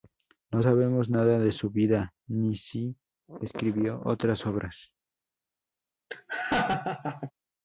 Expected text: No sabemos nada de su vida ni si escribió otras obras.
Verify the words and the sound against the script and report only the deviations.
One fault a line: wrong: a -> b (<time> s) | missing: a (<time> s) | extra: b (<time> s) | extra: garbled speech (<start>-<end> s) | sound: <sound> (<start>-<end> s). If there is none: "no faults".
sound: laugh (6.1-7.3 s)